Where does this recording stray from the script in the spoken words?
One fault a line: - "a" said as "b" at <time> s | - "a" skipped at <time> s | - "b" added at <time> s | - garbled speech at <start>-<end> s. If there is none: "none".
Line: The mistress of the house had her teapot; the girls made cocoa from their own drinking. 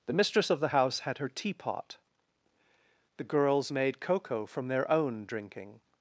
none